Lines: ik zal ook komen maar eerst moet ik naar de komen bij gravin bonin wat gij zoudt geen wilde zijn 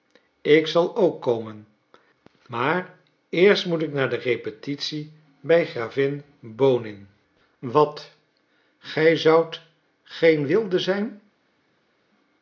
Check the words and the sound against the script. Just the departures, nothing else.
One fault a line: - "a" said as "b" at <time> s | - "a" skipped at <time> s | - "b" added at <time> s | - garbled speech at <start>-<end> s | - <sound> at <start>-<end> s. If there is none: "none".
- "komen" said as "repetitie" at 4.2 s